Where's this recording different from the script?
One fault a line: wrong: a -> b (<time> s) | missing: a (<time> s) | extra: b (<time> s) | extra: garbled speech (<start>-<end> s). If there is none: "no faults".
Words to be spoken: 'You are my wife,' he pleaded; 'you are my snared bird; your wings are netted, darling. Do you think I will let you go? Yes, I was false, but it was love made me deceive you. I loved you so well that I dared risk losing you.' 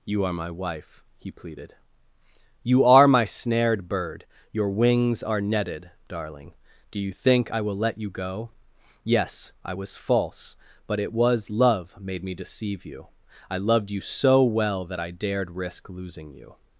no faults